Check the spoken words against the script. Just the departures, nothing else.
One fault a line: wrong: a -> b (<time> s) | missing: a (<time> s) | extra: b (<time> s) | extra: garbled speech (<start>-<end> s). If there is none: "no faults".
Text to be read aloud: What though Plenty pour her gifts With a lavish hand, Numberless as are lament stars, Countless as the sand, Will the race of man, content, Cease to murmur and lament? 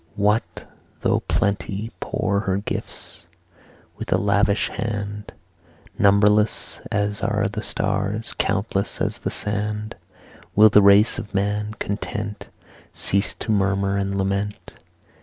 wrong: lament -> the (7.5 s)